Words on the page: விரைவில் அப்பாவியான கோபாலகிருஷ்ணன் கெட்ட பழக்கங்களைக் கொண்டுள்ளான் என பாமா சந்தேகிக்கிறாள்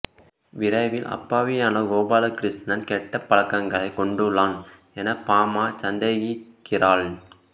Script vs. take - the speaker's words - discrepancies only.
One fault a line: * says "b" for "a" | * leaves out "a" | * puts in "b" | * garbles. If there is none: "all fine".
all fine